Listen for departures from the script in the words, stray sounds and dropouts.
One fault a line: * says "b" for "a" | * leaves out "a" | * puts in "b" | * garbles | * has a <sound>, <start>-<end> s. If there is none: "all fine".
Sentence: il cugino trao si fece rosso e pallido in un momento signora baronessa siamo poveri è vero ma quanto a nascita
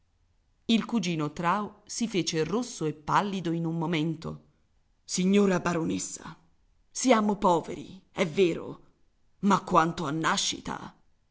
all fine